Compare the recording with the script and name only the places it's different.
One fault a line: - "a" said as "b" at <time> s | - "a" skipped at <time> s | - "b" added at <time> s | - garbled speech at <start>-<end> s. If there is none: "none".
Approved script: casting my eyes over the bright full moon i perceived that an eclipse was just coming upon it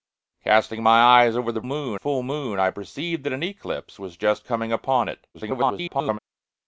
- "bright" said as "moon" at 1.6 s
- garbled speech at 5.3-6.2 s